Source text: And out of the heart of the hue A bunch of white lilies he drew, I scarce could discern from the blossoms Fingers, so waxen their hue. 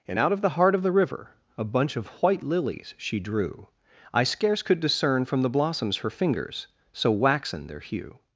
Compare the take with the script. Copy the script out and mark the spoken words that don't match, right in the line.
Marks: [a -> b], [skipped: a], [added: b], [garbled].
And out of the heart of the [hue -> river] A bunch of white lilies [he -> she] drew, I scarce could discern from the blossoms [added: Her] Fingers, so waxen their hue.